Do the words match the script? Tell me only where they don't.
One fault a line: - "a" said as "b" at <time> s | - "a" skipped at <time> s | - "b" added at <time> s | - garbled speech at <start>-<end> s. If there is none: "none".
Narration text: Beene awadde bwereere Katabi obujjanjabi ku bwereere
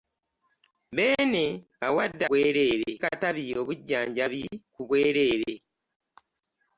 none